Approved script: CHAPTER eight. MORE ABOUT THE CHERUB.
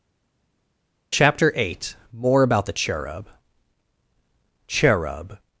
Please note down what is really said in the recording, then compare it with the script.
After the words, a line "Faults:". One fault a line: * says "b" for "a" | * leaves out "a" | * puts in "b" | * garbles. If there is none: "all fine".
CHAPTER eight. MORE ABOUT THE CHERUB CHERUB.
Faults:
* puts in "CHERUB"